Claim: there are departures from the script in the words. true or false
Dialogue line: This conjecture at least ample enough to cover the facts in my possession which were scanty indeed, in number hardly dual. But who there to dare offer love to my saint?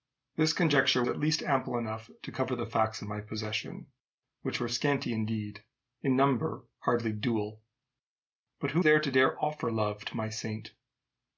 false